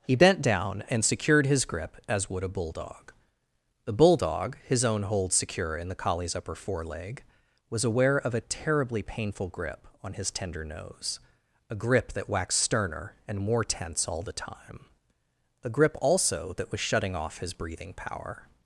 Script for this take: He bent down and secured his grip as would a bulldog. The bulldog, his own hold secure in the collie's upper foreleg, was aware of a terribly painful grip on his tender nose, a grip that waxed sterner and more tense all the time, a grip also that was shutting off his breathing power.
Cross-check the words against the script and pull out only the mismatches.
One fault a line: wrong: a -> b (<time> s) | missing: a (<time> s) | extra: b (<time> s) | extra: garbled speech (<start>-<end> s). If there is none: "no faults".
no faults